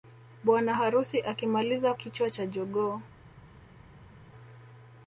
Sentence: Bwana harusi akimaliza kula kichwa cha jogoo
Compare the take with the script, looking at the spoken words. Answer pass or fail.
fail